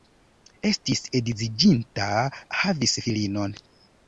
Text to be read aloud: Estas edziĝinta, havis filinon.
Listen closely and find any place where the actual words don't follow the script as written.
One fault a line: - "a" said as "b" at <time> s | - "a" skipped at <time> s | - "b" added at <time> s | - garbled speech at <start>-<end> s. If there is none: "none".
- "Estas" said as "Estis" at 0.7 s